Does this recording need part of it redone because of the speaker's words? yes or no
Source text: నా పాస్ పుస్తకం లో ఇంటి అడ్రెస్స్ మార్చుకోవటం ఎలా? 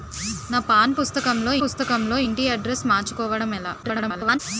yes